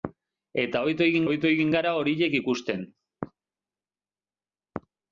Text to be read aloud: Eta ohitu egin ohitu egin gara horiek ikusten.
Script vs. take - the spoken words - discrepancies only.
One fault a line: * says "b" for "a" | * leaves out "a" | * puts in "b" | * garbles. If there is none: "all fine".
all fine